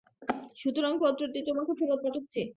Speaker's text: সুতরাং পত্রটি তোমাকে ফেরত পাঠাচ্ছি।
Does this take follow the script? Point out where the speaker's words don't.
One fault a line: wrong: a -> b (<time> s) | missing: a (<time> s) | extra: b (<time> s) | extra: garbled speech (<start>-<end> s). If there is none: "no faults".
no faults